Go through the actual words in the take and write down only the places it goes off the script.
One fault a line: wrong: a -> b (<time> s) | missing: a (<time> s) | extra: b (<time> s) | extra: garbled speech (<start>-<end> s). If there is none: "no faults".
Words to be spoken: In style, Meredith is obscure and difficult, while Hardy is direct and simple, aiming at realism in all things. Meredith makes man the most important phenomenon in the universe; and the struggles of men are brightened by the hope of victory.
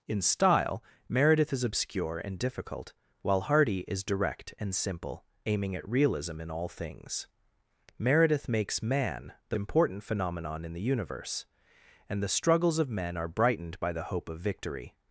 missing: most (9.6 s)